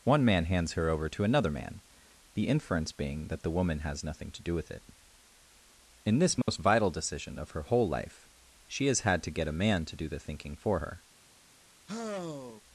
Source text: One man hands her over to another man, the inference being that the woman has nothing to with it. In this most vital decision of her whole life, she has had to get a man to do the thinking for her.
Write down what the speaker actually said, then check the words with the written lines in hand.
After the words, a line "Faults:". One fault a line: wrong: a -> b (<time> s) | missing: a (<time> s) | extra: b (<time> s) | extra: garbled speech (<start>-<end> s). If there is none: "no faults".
One man hands her over to another man, the inference being that the woman has nothing to do with it. In this most vital decision of her whole life, she has had to get a man to do the thinking for her.
Faults:
extra: do (4.4 s)